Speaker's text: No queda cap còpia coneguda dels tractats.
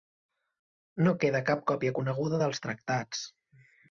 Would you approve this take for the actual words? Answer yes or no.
yes